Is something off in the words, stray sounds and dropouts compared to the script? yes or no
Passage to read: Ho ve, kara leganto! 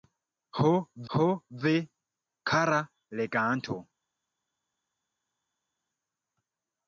yes